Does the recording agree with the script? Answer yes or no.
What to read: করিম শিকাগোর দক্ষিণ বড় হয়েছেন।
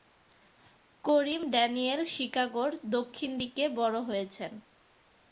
no